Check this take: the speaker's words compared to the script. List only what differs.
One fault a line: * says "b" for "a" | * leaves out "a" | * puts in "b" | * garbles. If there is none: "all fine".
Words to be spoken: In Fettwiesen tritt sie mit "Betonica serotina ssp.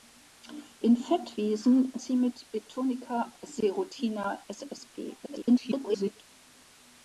* leaves out "tritt"
* garbles